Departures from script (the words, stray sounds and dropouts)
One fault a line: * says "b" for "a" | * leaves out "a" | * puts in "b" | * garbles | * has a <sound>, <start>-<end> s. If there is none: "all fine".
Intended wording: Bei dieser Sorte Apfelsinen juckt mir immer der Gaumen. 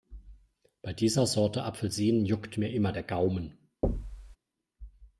* has a thud, 3.8-4.4 s